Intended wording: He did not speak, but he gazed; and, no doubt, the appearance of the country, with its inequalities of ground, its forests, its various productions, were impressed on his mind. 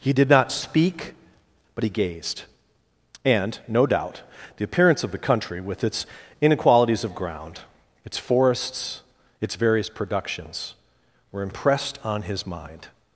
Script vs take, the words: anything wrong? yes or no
no